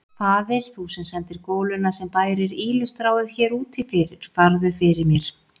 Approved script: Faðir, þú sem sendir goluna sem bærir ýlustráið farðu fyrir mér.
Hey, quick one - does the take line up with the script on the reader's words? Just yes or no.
no